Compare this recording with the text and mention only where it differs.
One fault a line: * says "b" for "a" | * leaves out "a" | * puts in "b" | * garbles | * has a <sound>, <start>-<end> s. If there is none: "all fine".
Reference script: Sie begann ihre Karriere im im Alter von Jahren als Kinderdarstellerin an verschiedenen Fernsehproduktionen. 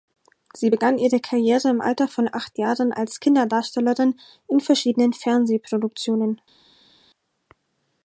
* leaves out "im"
* puts in "acht"
* says "in" for "an"